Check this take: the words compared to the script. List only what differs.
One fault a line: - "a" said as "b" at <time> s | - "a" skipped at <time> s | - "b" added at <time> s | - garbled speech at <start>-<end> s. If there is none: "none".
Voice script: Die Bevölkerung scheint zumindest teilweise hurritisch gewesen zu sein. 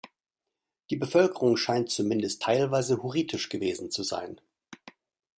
none